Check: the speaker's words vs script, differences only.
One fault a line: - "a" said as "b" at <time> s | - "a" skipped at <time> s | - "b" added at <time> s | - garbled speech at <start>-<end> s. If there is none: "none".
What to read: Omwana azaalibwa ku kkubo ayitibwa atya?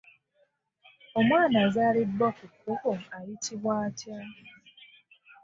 none